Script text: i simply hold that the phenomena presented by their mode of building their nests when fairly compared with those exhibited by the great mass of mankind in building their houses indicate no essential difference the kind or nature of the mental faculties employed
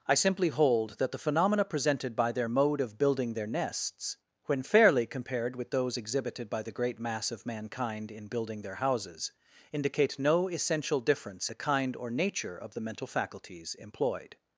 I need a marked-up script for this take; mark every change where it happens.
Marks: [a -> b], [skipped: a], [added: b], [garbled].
i simply hold that the phenomena presented by their mode of building their nests when fairly compared with those exhibited by the great mass of mankind in building their houses indicate no essential difference the kind or nature of the mental faculties employed